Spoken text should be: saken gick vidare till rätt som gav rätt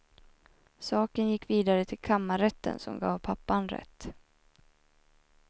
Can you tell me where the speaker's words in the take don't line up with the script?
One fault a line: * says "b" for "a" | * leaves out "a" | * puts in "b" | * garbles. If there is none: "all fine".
* says "kammarrätten" for "rätt"
* puts in "pappan"